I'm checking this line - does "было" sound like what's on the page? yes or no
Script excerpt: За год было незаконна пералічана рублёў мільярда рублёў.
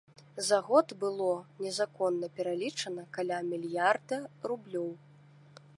yes